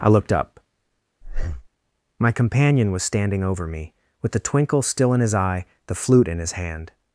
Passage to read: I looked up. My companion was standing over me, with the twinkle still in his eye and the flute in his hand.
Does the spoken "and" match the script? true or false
false